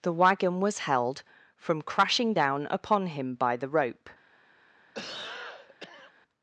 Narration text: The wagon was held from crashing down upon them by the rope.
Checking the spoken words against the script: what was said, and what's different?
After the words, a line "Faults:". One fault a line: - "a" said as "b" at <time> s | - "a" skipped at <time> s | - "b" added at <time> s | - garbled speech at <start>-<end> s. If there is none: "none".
The wagon was held from crashing down upon him by the rope.
Faults:
- "them" said as "him" at 3.1 s